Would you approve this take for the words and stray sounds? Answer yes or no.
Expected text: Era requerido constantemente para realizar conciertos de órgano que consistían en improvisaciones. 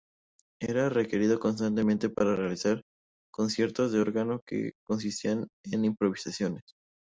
yes